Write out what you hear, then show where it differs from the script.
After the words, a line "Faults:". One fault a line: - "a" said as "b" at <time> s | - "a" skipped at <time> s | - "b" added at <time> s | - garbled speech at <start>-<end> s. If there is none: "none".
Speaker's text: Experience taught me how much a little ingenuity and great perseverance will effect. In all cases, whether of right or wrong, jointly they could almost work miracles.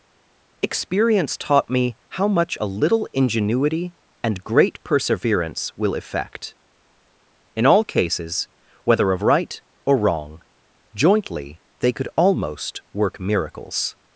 Experience taught me how much a little ingenuity and great perseverance will effect. In all cases, whether of right or wrong, jointly they could almost work miracles.
Faults:
none